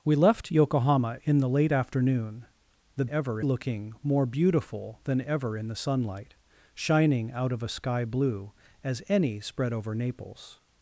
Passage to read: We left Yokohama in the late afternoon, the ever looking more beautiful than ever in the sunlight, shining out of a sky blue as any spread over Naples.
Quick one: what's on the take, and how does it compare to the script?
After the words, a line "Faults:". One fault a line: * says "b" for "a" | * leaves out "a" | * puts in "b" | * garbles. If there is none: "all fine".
We left Yokohama in the late afternoon, the ever looking more beautiful than ever in the sunlight, shining out of a sky blue as any spread over Naples.
Faults:
all fine